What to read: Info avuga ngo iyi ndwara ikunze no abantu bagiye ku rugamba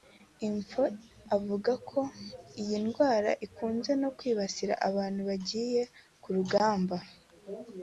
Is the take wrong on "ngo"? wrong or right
wrong